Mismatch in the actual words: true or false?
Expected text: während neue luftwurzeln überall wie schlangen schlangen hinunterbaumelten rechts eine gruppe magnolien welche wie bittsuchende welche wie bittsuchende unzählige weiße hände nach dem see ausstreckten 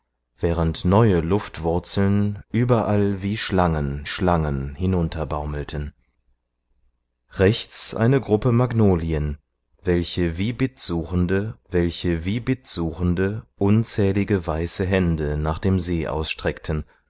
false